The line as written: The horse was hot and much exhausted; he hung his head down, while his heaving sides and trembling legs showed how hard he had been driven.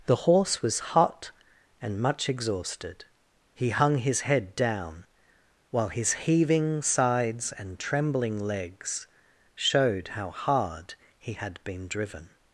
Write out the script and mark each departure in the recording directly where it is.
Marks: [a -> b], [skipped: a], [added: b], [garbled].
The horse was hot and much exhausted; he hung his head down, while his heaving sides and trembling legs showed how hard he had been driven.